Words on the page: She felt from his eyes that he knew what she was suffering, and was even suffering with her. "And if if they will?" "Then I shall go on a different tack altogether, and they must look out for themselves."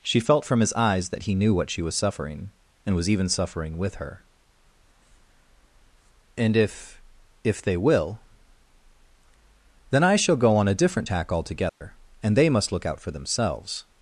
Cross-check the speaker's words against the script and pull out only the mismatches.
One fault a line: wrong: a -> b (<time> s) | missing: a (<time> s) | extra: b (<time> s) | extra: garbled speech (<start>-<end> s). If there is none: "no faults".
no faults